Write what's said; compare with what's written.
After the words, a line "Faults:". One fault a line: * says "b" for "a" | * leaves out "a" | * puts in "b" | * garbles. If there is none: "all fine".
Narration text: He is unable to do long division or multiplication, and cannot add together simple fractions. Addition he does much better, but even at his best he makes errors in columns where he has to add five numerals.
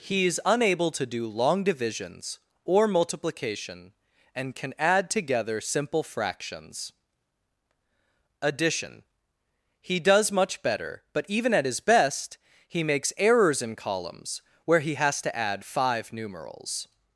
He is unable to do long divisions or multiplication, and can add together simple fractions. Addition he does much better, but even at his best he makes errors in columns where he has to add five numerals.
Faults:
* says "divisions" for "division"
* says "can" for "cannot"